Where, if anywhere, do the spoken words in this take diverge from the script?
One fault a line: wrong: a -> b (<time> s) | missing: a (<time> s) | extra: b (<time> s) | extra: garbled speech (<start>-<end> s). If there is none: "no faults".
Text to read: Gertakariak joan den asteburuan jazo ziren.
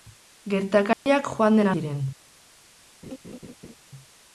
missing: asteburuan jazo (1.7 s)